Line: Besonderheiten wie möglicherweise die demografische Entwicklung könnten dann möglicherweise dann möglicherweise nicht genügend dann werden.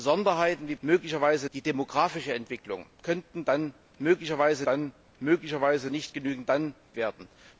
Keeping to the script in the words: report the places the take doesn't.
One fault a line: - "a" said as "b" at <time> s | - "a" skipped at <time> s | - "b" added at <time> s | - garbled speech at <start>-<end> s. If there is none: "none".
none